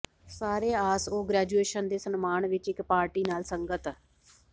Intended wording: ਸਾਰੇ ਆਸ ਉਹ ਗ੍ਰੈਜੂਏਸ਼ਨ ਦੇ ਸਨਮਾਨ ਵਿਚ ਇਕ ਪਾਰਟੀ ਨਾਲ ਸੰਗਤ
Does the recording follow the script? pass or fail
pass